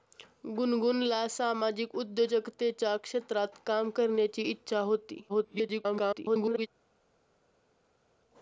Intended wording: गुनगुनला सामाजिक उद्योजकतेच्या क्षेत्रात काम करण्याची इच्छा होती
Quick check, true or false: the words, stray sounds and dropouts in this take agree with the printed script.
false